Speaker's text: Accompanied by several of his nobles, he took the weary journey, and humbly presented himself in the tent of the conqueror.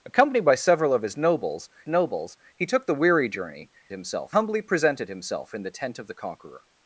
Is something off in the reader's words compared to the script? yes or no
yes